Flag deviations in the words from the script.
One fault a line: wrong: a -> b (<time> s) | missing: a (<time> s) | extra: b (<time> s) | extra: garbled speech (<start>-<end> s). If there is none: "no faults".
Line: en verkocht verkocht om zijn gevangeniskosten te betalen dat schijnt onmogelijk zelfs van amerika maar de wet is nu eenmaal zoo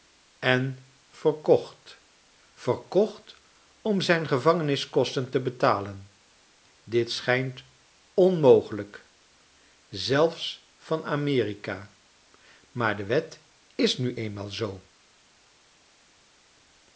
wrong: dat -> dit (6.8 s)